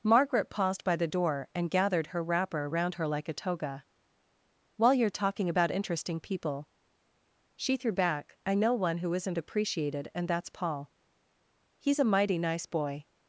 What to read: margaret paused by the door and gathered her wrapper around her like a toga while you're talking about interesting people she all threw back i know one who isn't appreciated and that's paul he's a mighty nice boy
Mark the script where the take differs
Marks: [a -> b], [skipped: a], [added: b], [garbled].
margaret paused by the door and gathered her wrapper around her like a toga while you're talking about interesting people she [skipped: all] threw back i know one who isn't appreciated and that's paul he's a mighty nice boy